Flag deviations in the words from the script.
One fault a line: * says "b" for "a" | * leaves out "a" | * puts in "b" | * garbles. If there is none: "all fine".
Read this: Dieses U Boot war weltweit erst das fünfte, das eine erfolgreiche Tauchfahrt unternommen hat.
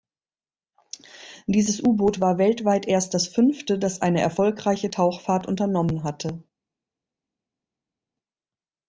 * says "hatte" for "hat"